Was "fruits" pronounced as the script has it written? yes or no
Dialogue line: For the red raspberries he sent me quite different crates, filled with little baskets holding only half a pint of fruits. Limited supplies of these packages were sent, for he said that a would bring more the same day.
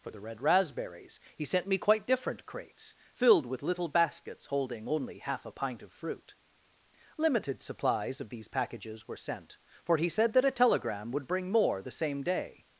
no